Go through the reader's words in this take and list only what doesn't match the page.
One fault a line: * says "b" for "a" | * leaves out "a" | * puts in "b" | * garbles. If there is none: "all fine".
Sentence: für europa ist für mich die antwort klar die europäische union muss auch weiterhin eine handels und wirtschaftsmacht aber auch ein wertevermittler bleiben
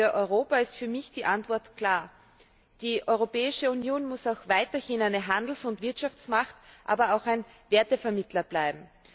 all fine